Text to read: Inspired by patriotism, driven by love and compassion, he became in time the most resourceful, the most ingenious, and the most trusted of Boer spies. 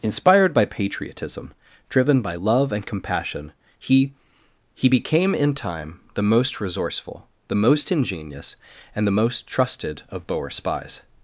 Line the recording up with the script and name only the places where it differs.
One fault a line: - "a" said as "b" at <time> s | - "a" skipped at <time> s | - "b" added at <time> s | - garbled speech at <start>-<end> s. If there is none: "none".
- "he" added at 4.7 s